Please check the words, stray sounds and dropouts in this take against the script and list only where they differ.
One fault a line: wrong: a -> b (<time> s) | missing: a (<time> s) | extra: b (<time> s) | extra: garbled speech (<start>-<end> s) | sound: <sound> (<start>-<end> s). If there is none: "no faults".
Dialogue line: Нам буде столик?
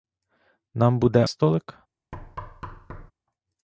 sound: thud (2.1-3.1 s)